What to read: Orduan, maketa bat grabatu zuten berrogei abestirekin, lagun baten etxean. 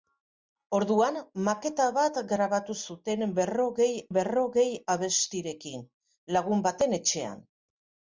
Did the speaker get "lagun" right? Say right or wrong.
right